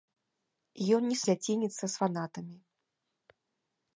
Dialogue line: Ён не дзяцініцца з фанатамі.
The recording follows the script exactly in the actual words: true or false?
true